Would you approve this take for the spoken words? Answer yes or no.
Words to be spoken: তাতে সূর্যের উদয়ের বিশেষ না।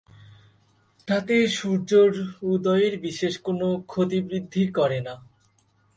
no